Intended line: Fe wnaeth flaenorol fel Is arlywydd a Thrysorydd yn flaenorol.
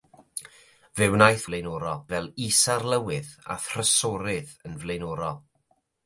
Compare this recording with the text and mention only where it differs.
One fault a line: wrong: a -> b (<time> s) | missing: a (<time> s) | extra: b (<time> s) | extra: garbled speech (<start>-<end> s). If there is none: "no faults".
no faults